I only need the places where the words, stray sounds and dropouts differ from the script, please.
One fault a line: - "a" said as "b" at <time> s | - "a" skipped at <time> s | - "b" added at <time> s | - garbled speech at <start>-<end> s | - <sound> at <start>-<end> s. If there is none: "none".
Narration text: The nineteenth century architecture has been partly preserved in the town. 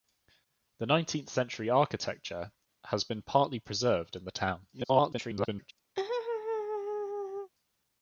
- garbled speech at 4.7-5.7 s
- laugh at 6.0-7.5 s